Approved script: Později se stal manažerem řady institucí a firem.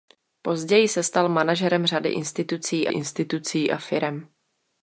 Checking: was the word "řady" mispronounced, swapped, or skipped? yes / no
no